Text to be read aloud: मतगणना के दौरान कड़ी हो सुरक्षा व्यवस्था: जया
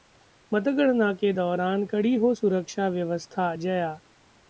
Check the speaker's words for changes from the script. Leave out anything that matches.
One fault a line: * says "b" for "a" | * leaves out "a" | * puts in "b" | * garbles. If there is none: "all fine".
all fine